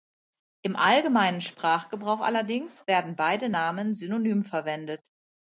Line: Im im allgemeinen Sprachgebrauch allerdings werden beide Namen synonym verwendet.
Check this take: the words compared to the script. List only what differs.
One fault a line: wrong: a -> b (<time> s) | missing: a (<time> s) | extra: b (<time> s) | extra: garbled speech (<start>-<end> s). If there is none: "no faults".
missing: im (0.8 s)